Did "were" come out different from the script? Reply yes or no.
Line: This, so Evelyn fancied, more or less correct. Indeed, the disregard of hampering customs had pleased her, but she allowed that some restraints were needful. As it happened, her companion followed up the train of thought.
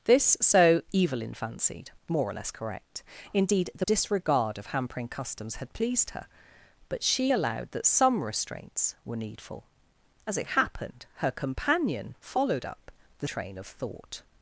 no